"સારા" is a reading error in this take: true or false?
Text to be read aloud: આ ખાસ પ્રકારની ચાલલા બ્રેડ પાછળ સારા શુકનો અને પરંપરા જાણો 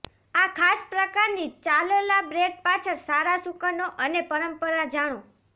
false